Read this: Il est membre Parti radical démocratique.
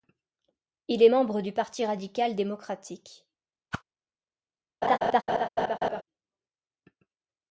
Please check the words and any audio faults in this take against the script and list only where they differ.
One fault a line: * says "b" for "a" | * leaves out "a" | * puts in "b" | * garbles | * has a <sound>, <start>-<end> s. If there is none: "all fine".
* puts in "du"
* has a whoosh, 3.7-3.8 s
* has a laugh, 4.8-6.0 s